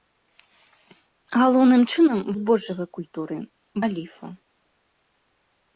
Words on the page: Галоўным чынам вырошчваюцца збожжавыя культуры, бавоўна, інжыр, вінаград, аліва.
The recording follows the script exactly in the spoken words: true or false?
false